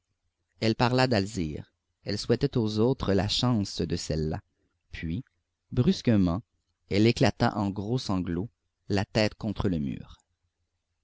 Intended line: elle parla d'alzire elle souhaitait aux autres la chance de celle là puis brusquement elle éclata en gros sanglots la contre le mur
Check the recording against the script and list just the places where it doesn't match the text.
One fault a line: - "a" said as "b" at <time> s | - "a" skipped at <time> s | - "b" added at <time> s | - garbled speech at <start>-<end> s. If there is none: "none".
- "tête" added at 9.0 s